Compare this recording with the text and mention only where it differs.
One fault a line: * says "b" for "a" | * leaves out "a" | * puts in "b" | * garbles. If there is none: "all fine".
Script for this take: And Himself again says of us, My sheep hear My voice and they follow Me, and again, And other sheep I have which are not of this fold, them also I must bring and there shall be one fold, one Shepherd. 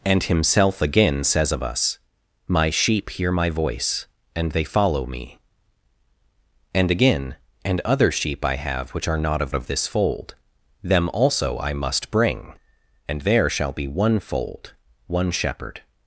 * puts in "of"